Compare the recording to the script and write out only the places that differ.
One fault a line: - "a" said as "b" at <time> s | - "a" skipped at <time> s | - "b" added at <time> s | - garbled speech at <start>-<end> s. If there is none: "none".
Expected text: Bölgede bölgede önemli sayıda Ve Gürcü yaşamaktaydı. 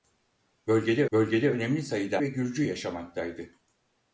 none